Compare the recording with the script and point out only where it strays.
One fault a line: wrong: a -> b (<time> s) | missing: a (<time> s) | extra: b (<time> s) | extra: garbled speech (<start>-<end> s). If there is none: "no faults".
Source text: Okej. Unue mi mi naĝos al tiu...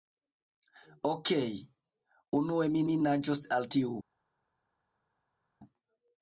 no faults